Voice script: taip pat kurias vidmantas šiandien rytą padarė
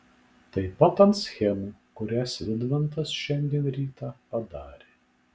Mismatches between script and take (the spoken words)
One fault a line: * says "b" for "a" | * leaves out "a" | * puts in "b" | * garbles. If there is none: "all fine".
* puts in "ant schemų"